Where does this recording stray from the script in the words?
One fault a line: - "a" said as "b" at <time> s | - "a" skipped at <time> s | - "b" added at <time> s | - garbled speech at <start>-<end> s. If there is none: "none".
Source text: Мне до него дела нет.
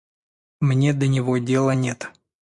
none